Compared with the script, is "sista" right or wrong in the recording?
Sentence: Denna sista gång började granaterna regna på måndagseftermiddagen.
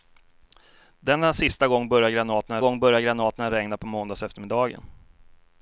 right